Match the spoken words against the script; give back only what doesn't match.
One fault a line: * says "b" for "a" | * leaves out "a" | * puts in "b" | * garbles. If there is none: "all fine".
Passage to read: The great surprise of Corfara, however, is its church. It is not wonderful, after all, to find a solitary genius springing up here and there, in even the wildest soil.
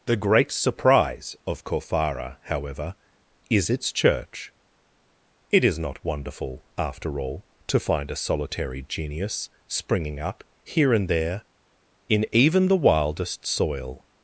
all fine